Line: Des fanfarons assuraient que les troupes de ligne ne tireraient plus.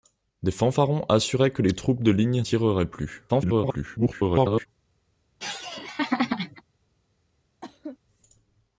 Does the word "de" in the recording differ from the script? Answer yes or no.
no